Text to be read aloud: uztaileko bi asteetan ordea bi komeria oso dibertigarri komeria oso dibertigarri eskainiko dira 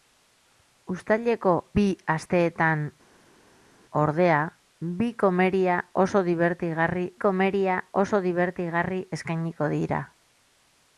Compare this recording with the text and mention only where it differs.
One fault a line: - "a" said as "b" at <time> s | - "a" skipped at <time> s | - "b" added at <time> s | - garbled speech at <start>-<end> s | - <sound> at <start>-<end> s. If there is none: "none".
none